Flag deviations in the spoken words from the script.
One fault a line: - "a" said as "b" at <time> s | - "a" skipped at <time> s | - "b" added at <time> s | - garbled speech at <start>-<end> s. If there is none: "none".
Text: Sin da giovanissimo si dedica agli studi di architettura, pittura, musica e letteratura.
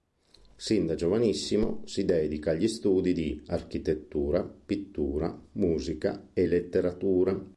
none